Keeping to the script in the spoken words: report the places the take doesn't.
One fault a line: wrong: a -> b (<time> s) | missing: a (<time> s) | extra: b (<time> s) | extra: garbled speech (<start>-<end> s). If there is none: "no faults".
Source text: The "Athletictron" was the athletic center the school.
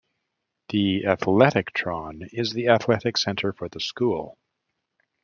wrong: was -> is (2.3 s)
extra: for (3.5 s)